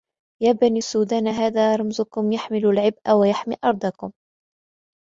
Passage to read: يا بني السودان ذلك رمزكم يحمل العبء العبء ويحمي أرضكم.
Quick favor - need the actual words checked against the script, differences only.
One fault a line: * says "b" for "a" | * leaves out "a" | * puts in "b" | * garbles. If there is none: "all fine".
* says "هذا" for "ذلك"
* leaves out "العبء"